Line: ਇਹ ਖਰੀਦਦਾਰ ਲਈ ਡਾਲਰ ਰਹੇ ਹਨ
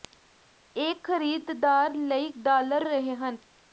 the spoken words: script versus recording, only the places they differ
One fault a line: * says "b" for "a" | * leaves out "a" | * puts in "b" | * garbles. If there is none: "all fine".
all fine